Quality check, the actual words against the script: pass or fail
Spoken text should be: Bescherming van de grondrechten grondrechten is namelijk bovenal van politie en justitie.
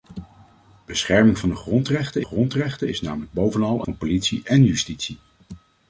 pass